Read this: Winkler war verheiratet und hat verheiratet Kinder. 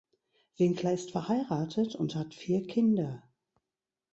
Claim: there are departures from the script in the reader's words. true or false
true